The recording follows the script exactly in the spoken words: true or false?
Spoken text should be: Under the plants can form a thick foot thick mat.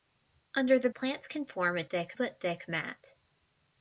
true